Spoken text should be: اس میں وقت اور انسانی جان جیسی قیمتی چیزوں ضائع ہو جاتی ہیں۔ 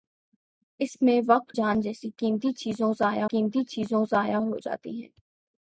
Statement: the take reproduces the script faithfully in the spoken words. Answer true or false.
false